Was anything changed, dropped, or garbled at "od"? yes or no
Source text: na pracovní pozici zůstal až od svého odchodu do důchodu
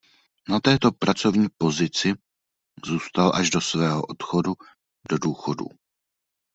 yes